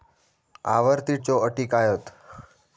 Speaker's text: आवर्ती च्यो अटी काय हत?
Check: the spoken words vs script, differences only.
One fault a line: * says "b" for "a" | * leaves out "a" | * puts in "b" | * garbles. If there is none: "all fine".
all fine